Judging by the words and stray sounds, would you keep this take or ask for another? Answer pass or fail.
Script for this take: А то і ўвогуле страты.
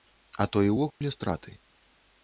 fail